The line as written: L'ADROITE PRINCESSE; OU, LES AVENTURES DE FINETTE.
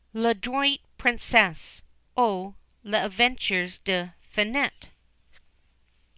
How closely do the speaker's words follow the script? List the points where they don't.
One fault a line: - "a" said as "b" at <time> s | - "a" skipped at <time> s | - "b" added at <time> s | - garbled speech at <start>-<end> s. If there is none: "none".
none